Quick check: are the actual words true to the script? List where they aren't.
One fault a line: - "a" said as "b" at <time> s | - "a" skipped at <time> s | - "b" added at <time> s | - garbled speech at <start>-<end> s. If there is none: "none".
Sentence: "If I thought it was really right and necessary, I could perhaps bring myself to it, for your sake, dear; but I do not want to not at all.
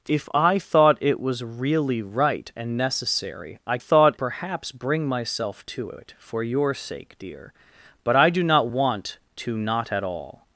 - "could" said as "thought" at 3.8 s